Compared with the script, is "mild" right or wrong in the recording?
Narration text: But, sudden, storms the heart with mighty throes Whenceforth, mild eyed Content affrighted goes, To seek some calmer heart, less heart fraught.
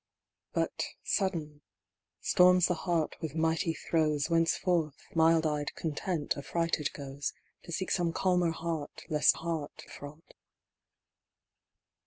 right